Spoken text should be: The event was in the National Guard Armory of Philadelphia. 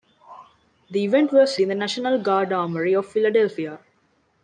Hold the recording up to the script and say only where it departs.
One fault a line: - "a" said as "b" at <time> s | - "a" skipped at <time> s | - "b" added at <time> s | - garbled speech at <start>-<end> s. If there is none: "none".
none